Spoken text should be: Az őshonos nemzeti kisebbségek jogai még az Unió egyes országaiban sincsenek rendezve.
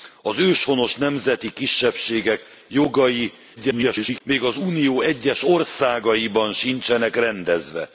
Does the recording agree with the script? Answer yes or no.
no